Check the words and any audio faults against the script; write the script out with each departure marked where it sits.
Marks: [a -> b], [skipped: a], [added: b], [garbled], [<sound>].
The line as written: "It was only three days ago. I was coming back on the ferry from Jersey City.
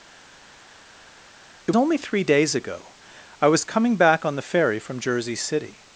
"It [skipped: was] only three days ago. I was coming back on the ferry from Jersey City.